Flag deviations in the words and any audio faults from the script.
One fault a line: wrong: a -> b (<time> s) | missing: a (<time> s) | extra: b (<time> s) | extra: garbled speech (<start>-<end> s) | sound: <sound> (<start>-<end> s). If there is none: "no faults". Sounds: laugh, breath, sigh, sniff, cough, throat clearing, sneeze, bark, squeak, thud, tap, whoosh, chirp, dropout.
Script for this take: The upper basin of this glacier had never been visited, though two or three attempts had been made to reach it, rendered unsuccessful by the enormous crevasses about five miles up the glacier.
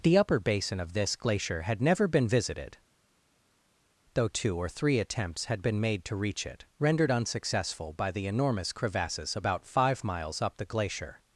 no faults